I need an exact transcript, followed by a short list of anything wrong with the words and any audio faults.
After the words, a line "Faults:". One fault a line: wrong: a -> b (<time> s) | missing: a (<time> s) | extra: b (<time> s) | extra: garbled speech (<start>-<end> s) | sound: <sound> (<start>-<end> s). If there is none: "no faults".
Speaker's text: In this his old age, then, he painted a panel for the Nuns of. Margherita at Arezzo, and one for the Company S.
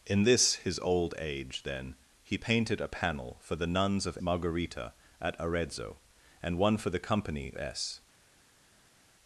In this his old age, then, he painted a panel for the Nuns of. Margherita at Arezzo, and one for the Company S.
Faults:
no faults